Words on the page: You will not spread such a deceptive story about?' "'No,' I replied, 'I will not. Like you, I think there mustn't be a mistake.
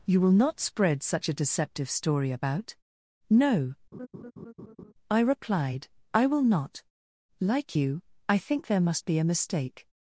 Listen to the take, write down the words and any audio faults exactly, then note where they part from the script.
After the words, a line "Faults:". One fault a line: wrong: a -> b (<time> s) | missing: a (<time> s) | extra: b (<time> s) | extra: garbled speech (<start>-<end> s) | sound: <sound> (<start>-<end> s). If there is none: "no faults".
You will not spread such a deceptive story about?' "'No,' I replied, 'I will not. Like you, I think there must be a mistake.
Faults:
sound: laugh (3.9-4.9 s)
wrong: mustn't -> must (8.8 s)